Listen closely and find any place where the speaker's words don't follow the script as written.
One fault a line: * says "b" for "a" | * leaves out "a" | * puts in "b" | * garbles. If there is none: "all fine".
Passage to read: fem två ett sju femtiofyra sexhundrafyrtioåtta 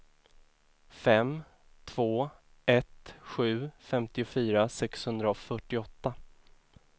all fine